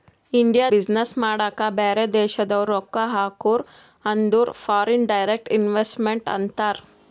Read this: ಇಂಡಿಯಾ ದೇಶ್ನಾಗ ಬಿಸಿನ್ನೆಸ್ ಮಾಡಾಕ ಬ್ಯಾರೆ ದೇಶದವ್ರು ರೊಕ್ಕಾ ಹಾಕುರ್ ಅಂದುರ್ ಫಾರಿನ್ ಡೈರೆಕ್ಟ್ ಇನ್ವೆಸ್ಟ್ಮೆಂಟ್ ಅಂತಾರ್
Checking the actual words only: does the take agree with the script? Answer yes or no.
no